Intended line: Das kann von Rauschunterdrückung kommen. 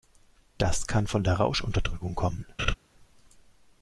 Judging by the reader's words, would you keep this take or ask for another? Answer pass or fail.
fail